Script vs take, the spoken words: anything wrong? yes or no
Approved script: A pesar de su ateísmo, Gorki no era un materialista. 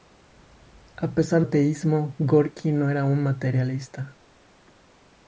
yes